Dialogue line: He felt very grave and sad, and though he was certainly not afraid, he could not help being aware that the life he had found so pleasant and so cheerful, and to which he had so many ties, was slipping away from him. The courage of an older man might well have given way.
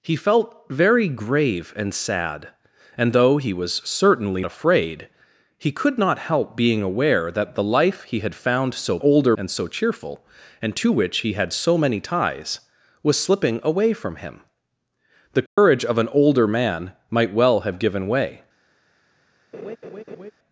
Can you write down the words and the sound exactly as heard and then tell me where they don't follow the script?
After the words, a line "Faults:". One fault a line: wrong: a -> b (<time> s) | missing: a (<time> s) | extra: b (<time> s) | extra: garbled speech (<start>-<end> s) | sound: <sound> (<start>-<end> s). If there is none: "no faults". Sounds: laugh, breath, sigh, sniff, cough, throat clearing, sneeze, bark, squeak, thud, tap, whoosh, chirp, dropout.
He felt very grave and sad, and though he was certainly afraid, he could not help being aware that the life he had found so older and so cheerful, and to which he had so many ties, was slipping away from him. The courage of an older man might well have given way.
Faults:
missing: not (4.4 s)
wrong: pleasant -> older (9.0 s)
sound: dropout (15.5-15.6 s)
sound: laugh (19.5-20.3 s)